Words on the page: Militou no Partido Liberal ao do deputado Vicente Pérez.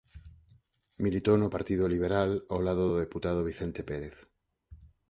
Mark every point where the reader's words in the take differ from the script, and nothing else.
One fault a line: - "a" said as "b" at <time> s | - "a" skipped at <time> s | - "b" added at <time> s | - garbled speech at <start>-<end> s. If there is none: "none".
- "lado" added at 2.7 s